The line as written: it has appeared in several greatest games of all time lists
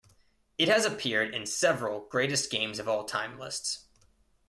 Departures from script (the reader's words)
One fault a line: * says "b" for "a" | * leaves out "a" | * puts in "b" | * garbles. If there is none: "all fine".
all fine